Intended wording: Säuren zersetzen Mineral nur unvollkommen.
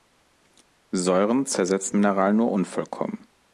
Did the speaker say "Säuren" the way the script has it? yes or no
yes